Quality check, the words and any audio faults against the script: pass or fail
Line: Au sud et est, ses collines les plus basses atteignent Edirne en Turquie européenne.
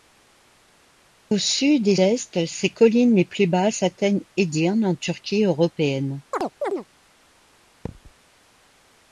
fail